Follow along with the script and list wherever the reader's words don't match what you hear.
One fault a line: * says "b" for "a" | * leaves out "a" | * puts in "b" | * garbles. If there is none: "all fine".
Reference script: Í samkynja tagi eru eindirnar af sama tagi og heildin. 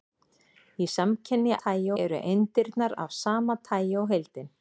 all fine